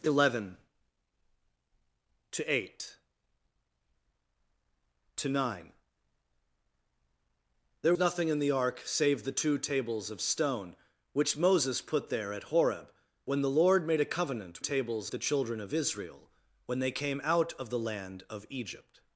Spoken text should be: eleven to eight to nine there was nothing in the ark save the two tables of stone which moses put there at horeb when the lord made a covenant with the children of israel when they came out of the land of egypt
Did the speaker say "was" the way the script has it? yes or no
no